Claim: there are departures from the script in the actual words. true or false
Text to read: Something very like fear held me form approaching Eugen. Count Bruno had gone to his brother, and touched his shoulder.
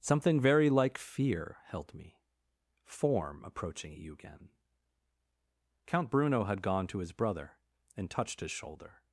false